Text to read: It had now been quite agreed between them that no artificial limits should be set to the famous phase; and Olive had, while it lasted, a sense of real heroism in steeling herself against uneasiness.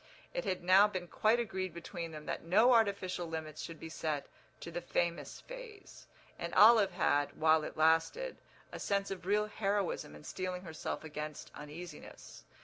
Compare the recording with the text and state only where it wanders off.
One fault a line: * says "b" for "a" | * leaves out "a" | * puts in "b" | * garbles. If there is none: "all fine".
all fine